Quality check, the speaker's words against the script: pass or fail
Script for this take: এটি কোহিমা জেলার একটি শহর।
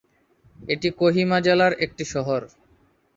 pass